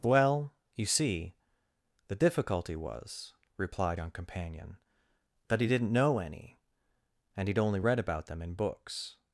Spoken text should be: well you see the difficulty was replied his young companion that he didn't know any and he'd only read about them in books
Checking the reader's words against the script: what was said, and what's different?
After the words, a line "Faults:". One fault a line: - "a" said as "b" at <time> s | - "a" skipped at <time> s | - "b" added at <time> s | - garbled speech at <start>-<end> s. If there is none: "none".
well you see the difficulty was replied young companion that he didn't know any and he'd only read about them in books
Faults:
- "his" skipped at 4.0 s